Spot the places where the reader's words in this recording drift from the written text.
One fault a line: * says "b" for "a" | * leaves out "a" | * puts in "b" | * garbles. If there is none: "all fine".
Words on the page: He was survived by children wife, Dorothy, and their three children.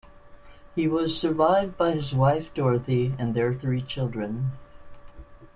* says "his" for "children"